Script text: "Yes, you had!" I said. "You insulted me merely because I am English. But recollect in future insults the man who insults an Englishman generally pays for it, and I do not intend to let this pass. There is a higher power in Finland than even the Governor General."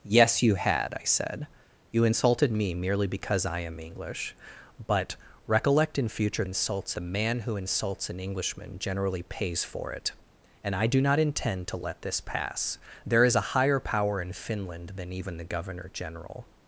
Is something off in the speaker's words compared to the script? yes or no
no